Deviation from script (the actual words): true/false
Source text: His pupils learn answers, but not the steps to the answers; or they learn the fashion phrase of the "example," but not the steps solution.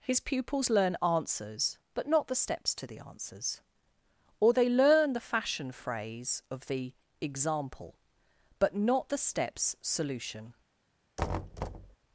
false